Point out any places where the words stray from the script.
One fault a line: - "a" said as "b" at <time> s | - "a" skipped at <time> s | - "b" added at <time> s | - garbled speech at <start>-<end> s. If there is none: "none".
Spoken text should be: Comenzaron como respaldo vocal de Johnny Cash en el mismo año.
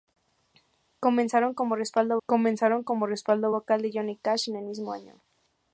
- "comenzaron como respaldo" added at 2.3 s